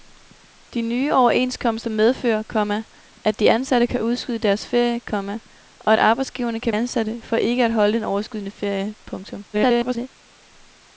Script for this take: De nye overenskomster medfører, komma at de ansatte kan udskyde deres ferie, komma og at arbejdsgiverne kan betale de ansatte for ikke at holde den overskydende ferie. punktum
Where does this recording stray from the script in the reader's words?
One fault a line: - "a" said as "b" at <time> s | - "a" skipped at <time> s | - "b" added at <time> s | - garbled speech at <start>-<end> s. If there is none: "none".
- "betale de" skipped at 6.7 s
- garbled speech at 9.5-10.1 s